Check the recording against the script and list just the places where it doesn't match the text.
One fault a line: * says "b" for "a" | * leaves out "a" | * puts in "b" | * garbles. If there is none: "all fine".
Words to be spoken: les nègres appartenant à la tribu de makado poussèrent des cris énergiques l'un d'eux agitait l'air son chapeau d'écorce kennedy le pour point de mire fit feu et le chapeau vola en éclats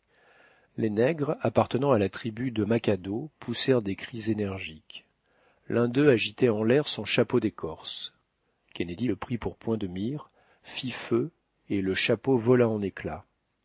* puts in "en"
* puts in "prit"